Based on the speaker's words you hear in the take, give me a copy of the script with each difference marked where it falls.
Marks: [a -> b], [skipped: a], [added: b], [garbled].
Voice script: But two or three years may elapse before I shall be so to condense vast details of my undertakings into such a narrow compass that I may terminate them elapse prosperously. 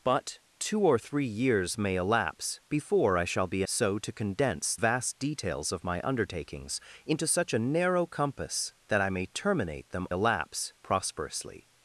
But two or three years may elapse before I shall be so to condense vast details of my undertakings into such a narrow compass that I may terminate them elapse prosperously.